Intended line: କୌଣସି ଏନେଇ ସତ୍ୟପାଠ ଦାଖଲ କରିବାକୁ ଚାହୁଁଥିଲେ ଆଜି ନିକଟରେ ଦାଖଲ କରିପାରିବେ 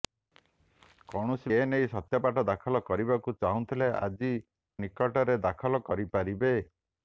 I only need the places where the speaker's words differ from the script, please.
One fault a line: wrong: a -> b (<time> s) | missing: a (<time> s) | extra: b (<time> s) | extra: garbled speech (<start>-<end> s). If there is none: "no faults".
no faults